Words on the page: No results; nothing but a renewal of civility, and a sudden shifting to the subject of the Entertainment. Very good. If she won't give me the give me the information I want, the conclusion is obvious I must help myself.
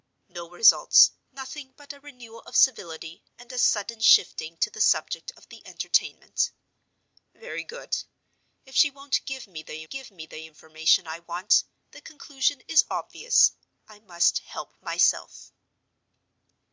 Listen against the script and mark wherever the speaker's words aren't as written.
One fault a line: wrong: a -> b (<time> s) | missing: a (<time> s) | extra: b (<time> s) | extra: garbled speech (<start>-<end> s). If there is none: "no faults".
no faults